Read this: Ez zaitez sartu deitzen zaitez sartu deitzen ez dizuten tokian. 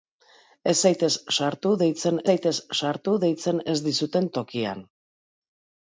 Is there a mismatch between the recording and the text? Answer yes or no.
no